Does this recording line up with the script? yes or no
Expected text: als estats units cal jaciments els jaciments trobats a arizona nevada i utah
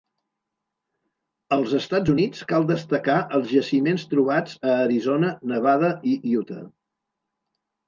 no